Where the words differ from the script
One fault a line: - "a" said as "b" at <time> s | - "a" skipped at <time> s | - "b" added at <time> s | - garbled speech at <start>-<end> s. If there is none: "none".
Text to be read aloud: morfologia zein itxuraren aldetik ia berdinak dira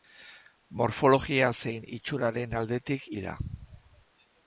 - "ia berdinak" skipped at 3.1 s